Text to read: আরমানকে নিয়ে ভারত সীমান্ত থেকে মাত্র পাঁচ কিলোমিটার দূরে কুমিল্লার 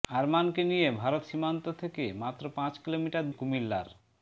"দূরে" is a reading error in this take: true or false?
true